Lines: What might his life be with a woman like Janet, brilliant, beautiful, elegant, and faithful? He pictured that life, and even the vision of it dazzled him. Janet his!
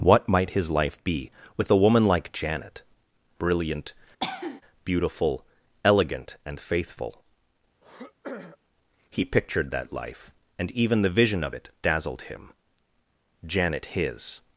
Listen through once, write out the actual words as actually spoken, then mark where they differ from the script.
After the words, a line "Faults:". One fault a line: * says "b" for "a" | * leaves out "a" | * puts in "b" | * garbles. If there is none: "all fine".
What might his life be with a woman like Janet, brilliant, beautiful, elegant, and faithful? He pictured that life, and even the vision of it dazzled him. Janet his!
Faults:
all fine